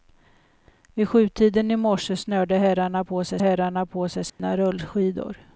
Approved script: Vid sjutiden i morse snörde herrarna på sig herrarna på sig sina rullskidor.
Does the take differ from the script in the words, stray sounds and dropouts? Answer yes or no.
yes